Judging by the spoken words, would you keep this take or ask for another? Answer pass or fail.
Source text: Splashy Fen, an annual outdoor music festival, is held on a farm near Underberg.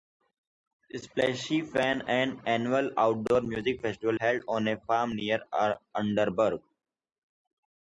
fail